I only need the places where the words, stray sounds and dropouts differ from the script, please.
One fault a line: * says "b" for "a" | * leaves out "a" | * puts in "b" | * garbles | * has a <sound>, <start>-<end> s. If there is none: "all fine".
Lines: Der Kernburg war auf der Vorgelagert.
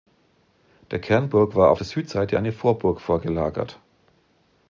* puts in "Südseite eine Vorburg"